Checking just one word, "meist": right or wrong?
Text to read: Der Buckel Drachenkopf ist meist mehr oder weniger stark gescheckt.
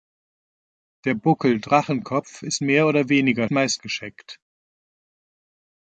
wrong